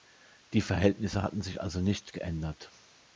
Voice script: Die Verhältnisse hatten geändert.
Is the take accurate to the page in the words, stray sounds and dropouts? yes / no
no